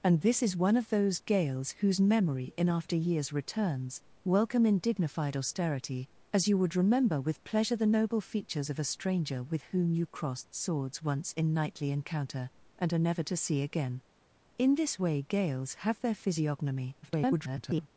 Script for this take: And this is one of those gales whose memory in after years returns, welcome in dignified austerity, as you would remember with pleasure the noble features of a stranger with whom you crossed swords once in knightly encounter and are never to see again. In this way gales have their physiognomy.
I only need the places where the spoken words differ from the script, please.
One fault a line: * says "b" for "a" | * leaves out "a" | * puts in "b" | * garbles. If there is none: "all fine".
* garbles